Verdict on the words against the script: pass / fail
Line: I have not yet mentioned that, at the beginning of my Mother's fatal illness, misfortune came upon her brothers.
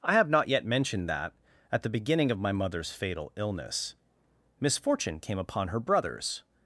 pass